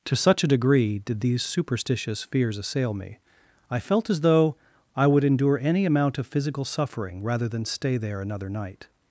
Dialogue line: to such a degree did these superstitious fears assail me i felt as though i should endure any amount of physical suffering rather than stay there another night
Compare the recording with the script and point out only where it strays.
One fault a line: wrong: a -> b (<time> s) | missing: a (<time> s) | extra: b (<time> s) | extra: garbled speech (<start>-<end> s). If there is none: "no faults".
wrong: should -> would (5.1 s)